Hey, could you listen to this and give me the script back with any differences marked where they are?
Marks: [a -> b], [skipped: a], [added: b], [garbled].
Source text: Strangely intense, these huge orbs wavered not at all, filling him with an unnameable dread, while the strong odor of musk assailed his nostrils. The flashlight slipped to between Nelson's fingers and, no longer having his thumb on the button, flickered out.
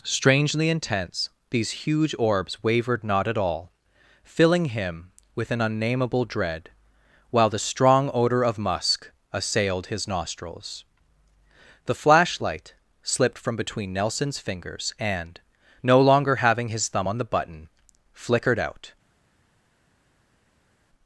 Strangely intense, these huge orbs wavered not at all, filling him with an unnameable dread, while the strong odor of musk assailed his nostrils. The flashlight slipped [to -> from] between Nelson's fingers and, no longer having his thumb on the button, flickered out.